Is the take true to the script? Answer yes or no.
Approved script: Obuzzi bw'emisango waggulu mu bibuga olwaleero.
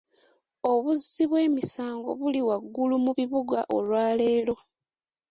no